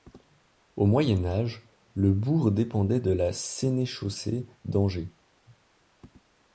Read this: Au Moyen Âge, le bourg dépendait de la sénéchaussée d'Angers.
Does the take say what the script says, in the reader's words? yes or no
yes